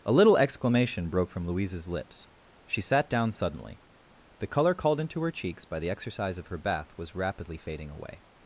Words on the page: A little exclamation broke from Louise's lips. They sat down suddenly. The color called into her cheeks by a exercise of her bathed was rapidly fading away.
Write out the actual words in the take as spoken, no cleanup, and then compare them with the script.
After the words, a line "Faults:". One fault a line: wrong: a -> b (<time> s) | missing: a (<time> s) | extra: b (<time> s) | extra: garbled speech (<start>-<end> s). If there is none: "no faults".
A little exclamation broke from Louise's lips. She sat down suddenly. The color called into her cheeks by the exercise of her bath was rapidly fading away.
Faults:
wrong: They -> She (2.6 s)
wrong: a -> the (5.8 s)
wrong: bathed -> bath (6.6 s)